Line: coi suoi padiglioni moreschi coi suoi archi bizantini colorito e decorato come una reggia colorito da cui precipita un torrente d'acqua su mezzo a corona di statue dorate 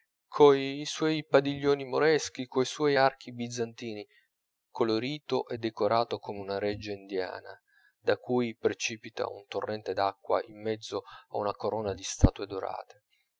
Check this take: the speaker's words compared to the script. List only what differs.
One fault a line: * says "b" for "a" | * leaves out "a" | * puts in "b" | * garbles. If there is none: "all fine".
* says "indiana" for "colorito"
* says "in" for "su"
* puts in "una"